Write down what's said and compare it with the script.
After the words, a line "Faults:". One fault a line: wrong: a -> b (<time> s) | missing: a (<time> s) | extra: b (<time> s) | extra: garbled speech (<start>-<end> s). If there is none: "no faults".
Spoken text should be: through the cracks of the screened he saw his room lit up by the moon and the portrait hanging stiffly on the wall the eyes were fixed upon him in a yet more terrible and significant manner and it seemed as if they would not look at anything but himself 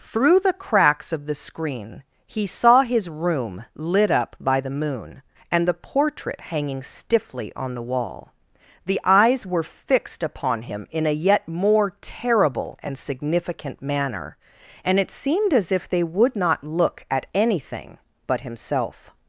through the cracks of the screen he saw his room lit up by the moon and the portrait hanging stiffly on the wall the eyes were fixed upon him in a yet more terrible and significant manner and it seemed as if they would not look at anything but himself
Faults:
wrong: screened -> screen (1.4 s)